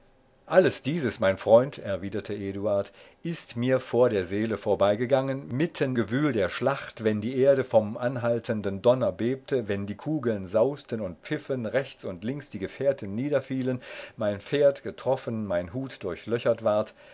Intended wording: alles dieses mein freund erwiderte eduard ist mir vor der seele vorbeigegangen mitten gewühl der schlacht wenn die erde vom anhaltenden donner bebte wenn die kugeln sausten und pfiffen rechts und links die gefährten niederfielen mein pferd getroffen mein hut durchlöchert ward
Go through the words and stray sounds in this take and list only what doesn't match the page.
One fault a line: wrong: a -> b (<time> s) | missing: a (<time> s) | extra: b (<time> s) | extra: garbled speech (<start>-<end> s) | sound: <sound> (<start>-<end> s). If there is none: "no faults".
no faults